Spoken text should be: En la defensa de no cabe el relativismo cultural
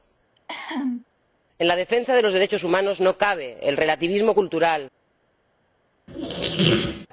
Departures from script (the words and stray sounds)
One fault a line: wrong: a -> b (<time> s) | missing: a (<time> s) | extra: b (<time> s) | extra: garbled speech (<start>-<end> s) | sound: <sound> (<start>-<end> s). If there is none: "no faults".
sound: cough (0.4-1.1 s)
extra: los derechos humanos (2.2 s)
sound: squeak (6.1-7.1 s)